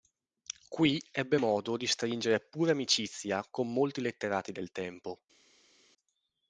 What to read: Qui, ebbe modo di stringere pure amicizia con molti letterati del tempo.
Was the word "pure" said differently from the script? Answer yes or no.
no